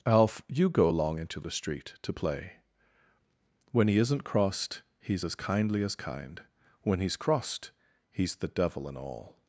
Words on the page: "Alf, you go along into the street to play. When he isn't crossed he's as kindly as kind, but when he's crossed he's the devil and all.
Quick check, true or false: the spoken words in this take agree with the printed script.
false